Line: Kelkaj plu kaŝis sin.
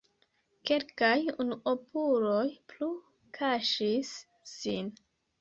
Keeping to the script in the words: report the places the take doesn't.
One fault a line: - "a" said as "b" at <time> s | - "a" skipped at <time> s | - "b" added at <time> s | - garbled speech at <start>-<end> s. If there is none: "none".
- "unuopuloj" added at 1.4 s